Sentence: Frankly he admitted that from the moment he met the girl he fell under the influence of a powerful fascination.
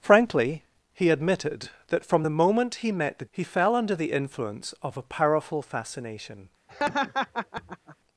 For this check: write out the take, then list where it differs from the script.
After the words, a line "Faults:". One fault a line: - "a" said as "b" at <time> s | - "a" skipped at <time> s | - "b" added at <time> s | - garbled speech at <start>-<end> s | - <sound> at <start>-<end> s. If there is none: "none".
Frankly he admitted that from the moment he met the he fell under the influence of a powerful fascination.
Faults:
- "girl" skipped at 3.2 s
- laugh at 6.7-8.0 s